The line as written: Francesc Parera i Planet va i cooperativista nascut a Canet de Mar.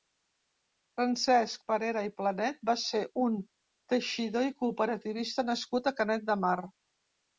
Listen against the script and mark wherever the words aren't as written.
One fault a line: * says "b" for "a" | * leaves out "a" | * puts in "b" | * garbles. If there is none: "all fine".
* puts in "ser un teixidor"